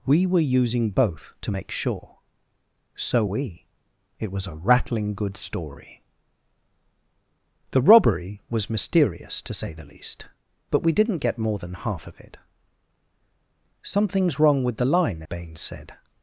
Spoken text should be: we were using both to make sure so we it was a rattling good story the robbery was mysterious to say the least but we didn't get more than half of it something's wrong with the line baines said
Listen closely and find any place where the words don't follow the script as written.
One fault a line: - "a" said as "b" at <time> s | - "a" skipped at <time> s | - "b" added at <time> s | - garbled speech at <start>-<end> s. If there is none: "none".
none